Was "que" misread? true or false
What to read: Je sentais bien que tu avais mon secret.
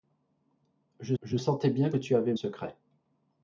true